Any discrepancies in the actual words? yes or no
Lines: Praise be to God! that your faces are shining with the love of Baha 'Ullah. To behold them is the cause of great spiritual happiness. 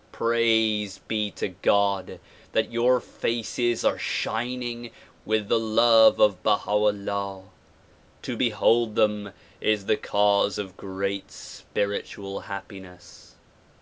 no